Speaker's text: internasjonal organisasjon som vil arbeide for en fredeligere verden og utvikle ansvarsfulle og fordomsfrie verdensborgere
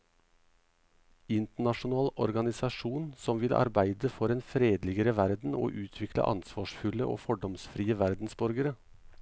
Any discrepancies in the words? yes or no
no